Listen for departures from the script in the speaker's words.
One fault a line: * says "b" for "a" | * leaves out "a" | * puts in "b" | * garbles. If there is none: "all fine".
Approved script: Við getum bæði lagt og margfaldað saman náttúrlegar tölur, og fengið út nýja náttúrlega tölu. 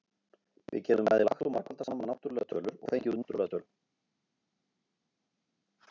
* leaves out "nýja"